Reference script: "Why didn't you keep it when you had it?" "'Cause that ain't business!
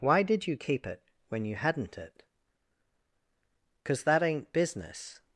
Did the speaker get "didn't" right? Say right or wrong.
wrong